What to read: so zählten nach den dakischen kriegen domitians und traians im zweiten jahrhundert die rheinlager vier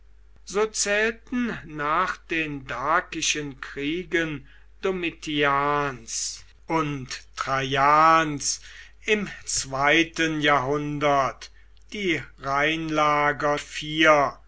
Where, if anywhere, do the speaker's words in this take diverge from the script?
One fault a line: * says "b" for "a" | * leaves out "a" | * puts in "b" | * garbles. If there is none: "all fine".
all fine